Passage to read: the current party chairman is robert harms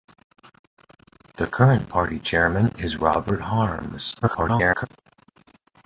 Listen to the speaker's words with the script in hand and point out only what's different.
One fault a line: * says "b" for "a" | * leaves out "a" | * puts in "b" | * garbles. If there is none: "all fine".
* garbles